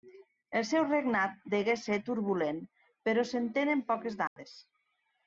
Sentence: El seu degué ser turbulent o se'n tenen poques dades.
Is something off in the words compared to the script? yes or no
yes